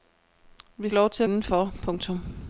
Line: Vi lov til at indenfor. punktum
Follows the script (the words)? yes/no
yes